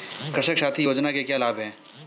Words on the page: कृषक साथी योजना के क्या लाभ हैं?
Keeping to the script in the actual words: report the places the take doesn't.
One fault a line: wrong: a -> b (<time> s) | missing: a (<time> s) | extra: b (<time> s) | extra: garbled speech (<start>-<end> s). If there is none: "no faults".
no faults